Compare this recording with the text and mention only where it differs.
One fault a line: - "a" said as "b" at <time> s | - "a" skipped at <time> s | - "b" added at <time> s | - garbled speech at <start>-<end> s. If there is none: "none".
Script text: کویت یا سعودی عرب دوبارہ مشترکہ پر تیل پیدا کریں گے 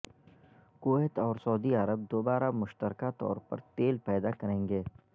- "یا" said as "اور" at 1.2 s
- "طور" added at 3.2 s